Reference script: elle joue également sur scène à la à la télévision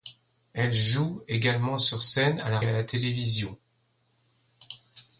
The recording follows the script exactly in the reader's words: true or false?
true